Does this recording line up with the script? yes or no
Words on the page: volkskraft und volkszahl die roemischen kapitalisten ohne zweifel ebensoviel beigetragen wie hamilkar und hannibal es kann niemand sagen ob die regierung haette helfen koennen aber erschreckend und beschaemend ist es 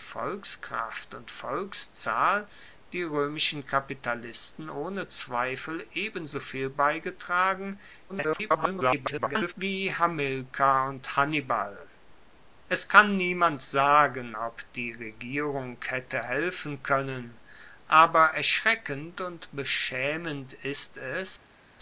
no